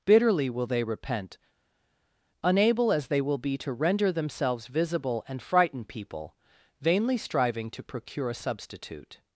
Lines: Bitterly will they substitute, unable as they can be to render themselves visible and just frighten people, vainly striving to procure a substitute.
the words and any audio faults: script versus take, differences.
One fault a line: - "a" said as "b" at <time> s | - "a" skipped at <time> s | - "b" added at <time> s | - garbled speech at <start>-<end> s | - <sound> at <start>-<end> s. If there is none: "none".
- "substitute" said as "repent" at 0.8 s
- "can" said as "will" at 3.2 s
- "just" skipped at 5.4 s